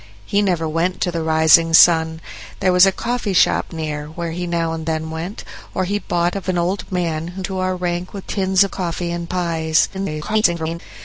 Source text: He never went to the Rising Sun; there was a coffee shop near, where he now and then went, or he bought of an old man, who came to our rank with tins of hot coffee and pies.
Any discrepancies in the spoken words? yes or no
yes